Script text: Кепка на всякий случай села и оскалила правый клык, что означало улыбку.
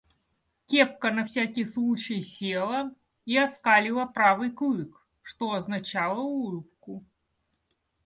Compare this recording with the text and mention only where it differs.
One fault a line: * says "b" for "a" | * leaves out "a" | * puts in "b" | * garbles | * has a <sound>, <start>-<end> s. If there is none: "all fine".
all fine